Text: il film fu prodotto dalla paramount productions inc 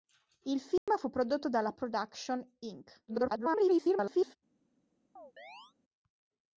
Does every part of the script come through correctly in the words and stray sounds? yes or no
no